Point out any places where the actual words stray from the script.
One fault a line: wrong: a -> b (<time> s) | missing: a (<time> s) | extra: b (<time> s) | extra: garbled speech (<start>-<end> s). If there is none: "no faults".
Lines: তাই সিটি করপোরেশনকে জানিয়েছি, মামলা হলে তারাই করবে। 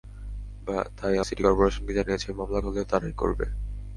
no faults